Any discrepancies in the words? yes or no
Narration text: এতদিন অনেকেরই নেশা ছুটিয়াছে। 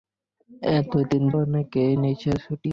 no